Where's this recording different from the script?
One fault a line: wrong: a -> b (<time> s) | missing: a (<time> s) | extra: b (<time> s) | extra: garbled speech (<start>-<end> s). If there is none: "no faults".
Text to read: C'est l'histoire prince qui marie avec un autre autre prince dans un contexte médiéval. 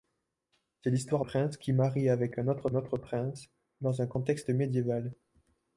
no faults